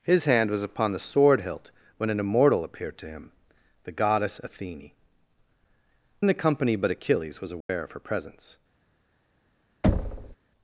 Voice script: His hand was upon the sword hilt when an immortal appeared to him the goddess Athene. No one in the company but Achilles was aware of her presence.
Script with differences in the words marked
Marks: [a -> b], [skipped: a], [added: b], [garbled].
His hand was upon the sword hilt when an immortal appeared to him the goddess Athene. [skipped: No one] in the company but Achilles was aware of her presence.